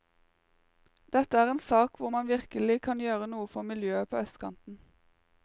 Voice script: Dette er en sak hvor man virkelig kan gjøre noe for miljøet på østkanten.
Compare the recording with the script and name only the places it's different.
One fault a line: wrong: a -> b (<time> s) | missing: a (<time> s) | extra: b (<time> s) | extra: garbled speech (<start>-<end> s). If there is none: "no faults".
no faults